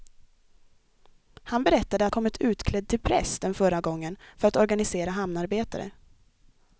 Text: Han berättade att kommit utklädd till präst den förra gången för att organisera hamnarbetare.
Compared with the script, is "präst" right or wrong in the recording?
right